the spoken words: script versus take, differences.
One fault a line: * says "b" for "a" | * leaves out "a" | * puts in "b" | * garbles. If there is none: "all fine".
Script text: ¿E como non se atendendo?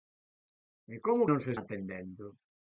all fine